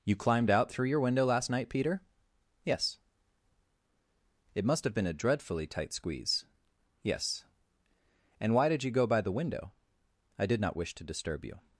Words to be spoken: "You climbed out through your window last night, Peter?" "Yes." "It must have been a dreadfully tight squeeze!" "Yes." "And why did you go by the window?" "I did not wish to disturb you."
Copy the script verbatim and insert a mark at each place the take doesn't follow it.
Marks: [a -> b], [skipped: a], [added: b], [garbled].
"You climbed out through your window last night, Peter?" "Yes." "It must have been a dreadfully tight squeeze!" "Yes." "And why did you go by the window?" "I did not wish to disturb you."